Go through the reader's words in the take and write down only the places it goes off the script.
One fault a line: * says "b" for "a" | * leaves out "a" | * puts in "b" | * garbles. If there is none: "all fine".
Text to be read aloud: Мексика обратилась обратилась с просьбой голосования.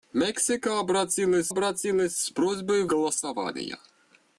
all fine